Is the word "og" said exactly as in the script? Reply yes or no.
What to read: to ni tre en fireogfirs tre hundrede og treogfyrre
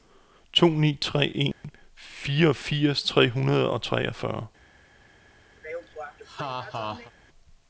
yes